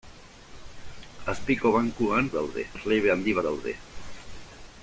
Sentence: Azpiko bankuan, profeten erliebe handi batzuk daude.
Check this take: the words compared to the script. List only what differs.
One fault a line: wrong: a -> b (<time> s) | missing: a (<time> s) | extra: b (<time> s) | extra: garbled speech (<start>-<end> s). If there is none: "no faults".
wrong: profeten -> daude (2.4 s)
missing: batzuk (3.4 s)